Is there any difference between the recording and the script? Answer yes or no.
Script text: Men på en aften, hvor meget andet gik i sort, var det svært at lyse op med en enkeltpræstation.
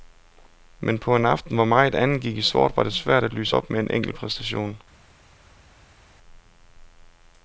no